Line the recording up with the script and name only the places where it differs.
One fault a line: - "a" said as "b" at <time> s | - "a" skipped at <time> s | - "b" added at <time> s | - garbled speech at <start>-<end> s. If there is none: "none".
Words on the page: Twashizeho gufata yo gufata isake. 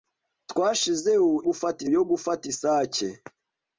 none